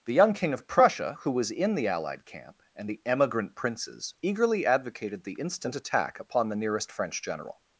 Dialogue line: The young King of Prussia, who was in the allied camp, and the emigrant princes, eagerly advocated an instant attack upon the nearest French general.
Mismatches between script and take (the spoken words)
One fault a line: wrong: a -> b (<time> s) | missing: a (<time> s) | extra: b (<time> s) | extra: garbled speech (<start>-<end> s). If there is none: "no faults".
wrong: an -> the (5.2 s)